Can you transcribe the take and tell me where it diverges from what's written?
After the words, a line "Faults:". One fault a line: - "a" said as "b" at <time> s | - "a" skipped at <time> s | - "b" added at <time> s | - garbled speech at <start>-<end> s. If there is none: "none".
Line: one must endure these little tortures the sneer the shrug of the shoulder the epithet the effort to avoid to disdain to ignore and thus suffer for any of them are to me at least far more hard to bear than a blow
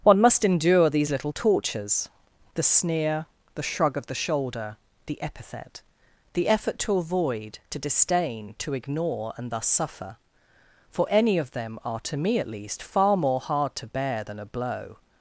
one must endure these little tortures the sneer the shrug of the shoulder the epithet the effort to avoid to disdain to ignore and thus suffer for any of them are to me at least far more hard to bear than a blow
Faults:
none